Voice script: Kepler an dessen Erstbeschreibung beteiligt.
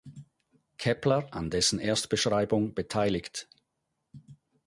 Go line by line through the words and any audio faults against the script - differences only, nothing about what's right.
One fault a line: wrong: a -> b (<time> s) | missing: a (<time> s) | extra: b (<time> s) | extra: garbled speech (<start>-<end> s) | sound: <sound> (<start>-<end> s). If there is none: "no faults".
no faults